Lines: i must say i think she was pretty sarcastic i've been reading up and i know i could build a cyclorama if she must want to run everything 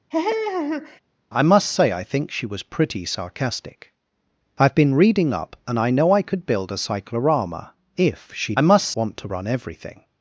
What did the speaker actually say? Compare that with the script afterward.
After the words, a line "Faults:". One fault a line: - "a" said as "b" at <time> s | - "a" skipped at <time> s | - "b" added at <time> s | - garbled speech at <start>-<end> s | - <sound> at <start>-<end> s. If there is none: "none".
i must say i think she was pretty sarcastic i've been reading up and i know i could build a cyclorama if she must want to run everything
Faults:
- laugh at 0.1-1.0 s